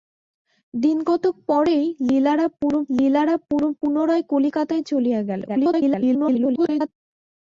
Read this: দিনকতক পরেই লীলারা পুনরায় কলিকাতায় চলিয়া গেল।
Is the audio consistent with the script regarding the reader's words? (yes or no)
no